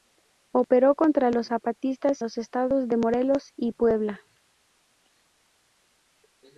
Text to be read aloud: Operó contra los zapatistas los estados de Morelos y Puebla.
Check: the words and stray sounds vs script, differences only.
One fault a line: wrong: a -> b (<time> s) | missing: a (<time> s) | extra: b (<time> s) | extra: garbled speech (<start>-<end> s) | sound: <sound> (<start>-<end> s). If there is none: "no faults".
no faults